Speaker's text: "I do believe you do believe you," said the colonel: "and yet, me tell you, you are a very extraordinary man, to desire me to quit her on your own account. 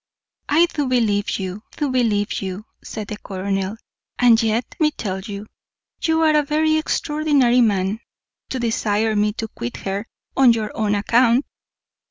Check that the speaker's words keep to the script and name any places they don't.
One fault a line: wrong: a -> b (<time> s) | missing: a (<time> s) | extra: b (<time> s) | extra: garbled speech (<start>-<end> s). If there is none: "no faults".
no faults